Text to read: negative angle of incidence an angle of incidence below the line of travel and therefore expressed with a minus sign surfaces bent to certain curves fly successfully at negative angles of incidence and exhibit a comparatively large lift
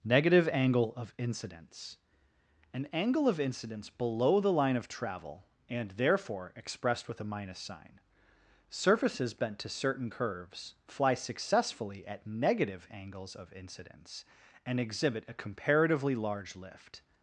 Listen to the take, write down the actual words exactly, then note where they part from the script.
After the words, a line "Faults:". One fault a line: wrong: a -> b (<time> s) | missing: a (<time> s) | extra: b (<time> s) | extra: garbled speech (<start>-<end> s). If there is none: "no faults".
negative angle of incidence an angle of incidence below the line of travel and therefore expressed with a minus sign surfaces bent to certain curves fly successfully at negative angles of incidence and exhibit a comparatively large lift
Faults:
no faults